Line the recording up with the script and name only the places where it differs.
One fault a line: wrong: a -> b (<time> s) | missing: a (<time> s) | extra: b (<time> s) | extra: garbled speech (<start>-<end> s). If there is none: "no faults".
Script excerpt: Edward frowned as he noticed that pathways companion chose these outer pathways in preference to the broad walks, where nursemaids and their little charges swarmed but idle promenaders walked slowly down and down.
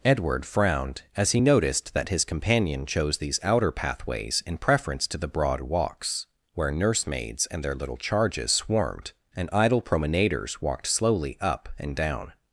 wrong: pathways -> his (2.1 s)
wrong: but -> and (9.3 s)
wrong: down -> up (11.4 s)